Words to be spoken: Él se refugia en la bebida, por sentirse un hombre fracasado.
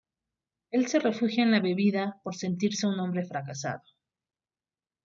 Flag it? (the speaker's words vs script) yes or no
no